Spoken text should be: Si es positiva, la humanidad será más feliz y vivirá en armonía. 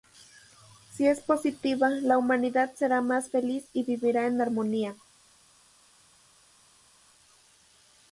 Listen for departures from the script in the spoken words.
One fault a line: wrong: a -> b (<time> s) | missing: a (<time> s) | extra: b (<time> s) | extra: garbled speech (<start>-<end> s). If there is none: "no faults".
no faults